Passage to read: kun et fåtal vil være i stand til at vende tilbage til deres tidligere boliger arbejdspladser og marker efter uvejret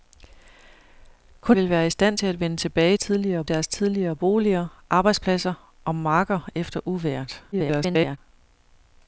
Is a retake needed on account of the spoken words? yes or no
yes